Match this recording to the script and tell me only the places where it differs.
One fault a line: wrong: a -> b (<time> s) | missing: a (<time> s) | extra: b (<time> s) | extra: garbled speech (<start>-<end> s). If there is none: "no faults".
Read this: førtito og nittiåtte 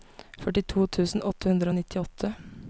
extra: tusen åtte hundre (1.0 s)